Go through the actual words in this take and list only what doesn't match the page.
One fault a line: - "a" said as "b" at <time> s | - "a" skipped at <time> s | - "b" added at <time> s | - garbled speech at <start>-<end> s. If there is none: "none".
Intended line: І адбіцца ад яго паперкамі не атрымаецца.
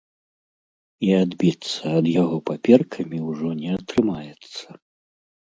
- "ўжо" added at 3.3 s